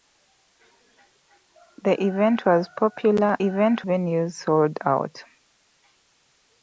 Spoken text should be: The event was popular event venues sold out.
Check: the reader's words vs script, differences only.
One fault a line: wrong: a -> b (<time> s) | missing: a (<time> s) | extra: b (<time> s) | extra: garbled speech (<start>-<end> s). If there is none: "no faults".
no faults